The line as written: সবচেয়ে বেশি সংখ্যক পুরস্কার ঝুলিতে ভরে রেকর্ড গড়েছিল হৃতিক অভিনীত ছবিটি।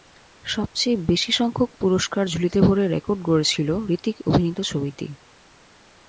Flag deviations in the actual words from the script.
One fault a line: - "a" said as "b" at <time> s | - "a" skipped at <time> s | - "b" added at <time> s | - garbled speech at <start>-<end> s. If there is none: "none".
none